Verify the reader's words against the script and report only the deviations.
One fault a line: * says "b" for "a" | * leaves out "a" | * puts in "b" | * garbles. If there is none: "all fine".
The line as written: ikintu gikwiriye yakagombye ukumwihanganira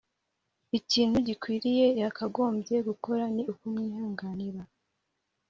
* puts in "gukora ni"